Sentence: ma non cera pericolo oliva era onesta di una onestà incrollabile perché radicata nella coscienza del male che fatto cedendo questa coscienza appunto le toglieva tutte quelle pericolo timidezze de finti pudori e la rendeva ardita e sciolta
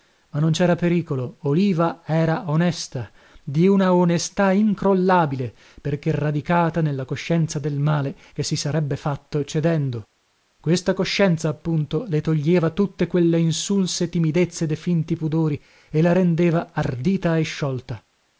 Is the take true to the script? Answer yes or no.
no